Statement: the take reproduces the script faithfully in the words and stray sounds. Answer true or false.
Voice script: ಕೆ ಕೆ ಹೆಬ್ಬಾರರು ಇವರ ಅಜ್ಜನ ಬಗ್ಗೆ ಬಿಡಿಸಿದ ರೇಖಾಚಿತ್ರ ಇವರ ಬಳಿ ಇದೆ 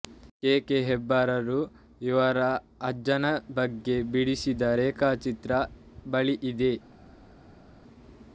false